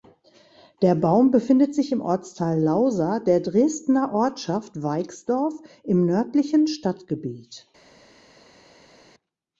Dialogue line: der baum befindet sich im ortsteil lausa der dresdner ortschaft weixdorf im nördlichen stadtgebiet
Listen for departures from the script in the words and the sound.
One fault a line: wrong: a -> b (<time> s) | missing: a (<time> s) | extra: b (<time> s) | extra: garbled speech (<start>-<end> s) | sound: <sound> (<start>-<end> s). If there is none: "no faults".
no faults